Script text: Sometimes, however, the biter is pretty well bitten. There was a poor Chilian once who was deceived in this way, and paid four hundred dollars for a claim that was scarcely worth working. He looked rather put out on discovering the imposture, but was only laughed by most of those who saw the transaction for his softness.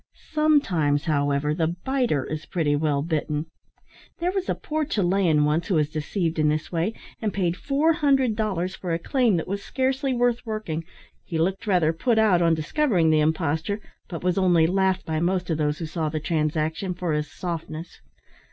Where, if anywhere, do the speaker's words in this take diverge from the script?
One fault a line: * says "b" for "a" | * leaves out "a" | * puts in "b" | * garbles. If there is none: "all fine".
all fine